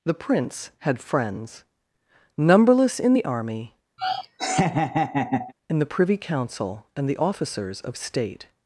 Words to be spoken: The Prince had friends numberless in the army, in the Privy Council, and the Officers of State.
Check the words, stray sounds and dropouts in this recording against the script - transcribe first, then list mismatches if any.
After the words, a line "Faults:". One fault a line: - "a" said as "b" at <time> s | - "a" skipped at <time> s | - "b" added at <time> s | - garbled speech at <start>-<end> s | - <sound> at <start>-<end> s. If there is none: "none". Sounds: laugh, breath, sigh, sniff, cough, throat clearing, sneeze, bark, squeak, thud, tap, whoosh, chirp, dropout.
The Prince had friends numberless in the army, in the Privy Council, and the Officers of State.
Faults:
- laugh at 4.0-5.5 s